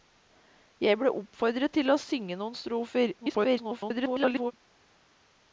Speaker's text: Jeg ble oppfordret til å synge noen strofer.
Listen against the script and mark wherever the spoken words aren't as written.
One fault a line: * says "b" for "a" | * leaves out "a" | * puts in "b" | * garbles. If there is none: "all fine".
* garbles